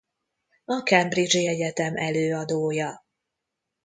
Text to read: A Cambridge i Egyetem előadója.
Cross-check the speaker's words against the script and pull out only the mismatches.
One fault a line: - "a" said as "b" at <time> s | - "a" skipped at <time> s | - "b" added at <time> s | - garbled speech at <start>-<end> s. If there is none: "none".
none